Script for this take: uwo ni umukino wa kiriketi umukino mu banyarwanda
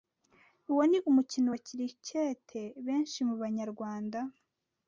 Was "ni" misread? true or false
false